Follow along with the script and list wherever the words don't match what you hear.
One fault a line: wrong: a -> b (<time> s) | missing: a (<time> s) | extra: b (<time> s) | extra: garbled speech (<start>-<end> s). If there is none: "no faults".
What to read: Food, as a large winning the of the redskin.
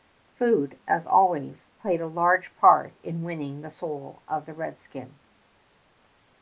extra: always played (1.1 s)
extra: part in (2.5 s)
extra: soul (3.7 s)